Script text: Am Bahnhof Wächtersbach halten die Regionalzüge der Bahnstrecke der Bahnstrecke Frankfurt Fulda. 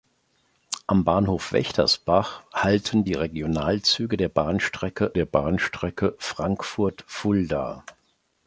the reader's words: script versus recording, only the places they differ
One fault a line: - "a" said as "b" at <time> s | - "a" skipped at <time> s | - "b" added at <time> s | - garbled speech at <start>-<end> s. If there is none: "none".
none